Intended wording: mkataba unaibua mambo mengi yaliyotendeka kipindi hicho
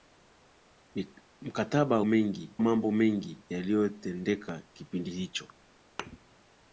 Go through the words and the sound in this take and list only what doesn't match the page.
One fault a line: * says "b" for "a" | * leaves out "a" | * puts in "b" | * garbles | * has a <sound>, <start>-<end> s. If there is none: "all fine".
* says "mengi" for "unaibua"
* has a thud, 6.0-6.2 s